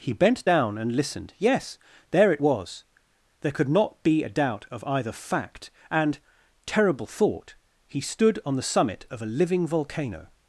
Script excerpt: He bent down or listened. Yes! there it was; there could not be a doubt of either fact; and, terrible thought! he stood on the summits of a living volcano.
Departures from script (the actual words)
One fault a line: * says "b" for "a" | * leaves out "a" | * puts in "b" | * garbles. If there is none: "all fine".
* says "and" for "or"
* says "summit" for "summits"